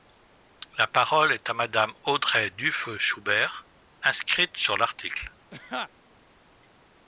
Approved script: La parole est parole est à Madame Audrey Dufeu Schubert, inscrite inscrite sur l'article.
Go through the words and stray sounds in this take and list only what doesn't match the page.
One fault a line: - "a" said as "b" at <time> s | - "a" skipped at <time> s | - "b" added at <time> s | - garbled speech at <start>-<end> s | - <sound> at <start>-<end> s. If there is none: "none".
- "parole est" skipped at 1.5 s
- "inscrite" skipped at 4.6 s
- laugh at 5.5-5.9 s